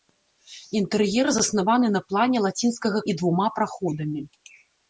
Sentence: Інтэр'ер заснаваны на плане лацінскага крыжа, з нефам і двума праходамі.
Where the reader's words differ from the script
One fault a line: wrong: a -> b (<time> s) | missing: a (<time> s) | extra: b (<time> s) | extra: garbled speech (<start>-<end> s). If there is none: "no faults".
missing: крыжа з нефам (3.0 s)